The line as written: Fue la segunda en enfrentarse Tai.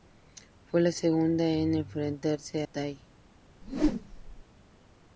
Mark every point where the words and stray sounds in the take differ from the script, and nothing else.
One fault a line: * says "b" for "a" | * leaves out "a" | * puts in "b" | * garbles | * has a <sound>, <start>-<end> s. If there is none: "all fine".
* has a whoosh, 3.6-4.4 s